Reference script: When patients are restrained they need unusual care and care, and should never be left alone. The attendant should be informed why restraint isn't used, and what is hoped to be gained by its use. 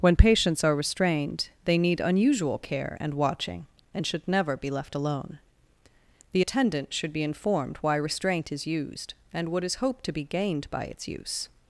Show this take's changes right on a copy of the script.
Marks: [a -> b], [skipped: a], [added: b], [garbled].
When patients are restrained they need unusual care and [care, -> watching] and should never be left alone. The attendant should be informed why restraint [isn't -> is] used, and what is hoped to be gained by its use.